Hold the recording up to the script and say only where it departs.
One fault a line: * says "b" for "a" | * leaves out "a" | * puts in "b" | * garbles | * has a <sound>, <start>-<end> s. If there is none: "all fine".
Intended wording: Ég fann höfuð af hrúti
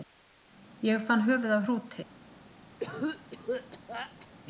* has a cough, 2.8-4.3 s